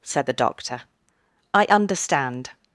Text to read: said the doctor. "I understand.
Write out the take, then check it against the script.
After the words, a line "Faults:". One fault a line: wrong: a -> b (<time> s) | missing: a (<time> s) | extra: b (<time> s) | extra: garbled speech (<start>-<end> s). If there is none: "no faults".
said the doctor. "I understand.
Faults:
no faults